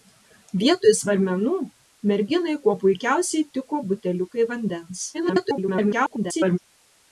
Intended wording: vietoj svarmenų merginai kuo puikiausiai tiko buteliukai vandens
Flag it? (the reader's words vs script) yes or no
yes